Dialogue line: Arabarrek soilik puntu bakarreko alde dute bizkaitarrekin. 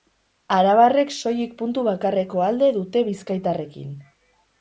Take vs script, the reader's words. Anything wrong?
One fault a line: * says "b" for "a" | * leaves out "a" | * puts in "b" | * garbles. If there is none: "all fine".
all fine